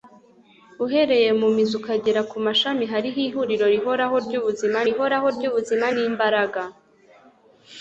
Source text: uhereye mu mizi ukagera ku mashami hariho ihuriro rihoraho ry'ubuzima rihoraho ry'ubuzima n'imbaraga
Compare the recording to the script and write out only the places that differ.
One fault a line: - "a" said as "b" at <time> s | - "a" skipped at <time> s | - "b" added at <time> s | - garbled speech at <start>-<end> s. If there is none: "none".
none